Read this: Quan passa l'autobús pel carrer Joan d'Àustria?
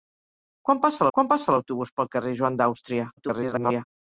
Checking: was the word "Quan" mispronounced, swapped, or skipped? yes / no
no